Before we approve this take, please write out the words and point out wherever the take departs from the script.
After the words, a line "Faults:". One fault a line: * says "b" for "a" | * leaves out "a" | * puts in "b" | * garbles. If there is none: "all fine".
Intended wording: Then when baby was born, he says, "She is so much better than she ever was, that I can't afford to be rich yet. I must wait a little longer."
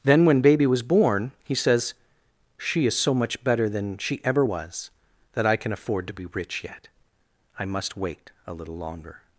Then when baby was born, he says, "She is so much better than she ever was, that I can afford to be rich yet. I must wait a little longer."
Faults:
* says "can" for "can't"